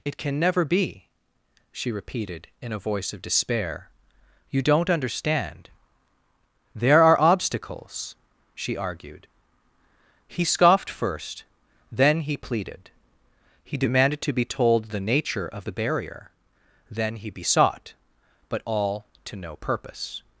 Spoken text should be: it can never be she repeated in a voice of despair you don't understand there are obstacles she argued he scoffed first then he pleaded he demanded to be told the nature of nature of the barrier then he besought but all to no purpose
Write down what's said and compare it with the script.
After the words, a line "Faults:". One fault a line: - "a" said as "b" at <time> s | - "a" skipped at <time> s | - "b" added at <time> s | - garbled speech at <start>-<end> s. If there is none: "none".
it can never be she repeated in a voice of despair you don't understand there are obstacles she argued he scoffed first then he pleaded he demanded to be told the nature of the barrier then he besought but all to no purpose
Faults:
- "nature of" skipped at 15.7 s